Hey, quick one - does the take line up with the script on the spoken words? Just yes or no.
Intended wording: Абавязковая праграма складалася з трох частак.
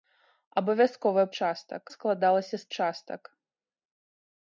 no